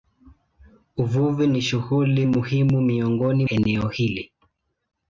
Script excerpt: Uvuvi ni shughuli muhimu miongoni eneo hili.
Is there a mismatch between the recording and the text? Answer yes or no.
no